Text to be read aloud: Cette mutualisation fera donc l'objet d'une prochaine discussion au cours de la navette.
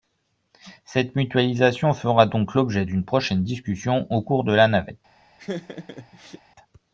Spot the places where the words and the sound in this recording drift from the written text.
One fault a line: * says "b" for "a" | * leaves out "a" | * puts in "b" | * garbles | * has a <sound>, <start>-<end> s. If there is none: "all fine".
* has a laugh, 5.4-6.4 s